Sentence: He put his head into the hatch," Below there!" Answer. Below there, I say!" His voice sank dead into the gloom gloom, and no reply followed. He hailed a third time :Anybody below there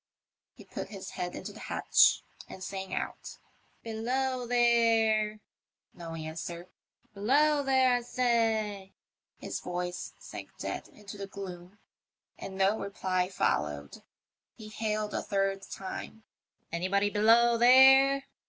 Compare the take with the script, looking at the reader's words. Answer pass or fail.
fail